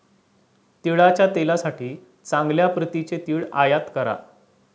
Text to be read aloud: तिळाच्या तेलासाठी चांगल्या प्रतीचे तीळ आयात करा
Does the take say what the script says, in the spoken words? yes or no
yes